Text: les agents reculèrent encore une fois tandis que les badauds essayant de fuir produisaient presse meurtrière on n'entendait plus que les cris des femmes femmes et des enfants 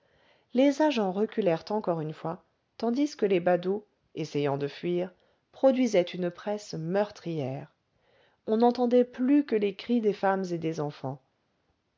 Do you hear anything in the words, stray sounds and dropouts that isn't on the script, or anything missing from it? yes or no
yes